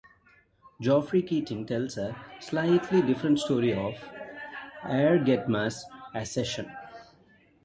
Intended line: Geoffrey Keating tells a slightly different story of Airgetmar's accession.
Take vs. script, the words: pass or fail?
pass